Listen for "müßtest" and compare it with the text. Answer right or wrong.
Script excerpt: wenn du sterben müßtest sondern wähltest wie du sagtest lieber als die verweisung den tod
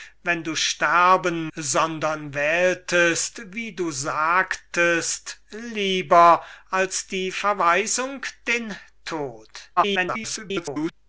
wrong